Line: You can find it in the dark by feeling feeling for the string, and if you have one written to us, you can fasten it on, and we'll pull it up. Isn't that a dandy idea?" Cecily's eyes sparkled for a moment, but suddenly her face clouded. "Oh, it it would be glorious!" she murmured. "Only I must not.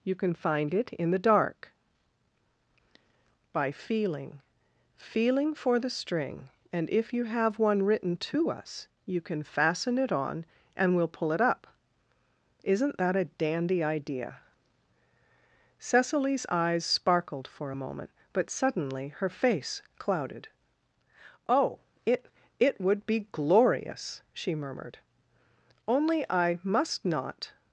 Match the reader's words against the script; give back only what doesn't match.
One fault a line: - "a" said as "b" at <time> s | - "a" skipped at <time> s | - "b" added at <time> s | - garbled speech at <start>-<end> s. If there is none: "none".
none